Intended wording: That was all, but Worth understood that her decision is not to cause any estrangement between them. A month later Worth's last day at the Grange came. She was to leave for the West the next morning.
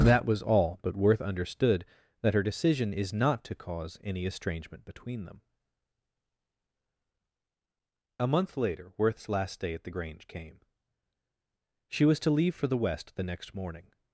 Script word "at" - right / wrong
right